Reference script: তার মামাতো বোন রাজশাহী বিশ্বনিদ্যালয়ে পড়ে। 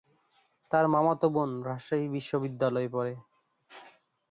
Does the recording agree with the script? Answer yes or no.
yes